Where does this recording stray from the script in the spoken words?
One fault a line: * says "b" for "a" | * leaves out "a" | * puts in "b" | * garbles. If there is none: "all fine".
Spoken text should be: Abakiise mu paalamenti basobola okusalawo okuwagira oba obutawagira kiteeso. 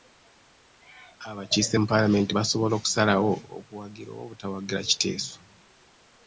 all fine